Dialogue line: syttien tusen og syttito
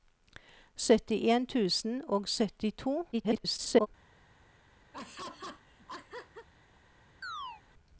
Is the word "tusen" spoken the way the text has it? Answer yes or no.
yes